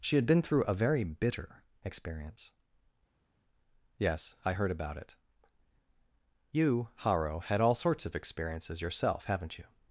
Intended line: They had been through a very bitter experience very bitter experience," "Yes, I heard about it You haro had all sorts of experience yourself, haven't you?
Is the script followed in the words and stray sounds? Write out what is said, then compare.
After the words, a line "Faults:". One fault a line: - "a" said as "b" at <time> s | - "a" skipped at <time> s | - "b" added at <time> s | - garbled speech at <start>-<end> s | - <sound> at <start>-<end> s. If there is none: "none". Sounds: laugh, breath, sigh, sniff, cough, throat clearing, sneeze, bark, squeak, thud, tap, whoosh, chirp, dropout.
She had been through a very bitter experience," "Yes, I heard about it You haro had all sorts of experiences yourself, haven't you?
Faults:
- "They" said as "She" at 0.0 s
- "very bitter experience" skipped at 2.5 s
- "experience" said as "experiences" at 8.1 s